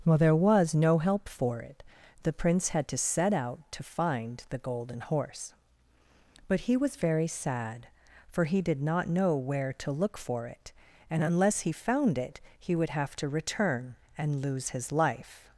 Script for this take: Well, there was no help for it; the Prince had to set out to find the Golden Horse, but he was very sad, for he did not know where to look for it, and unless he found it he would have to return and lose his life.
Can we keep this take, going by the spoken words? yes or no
yes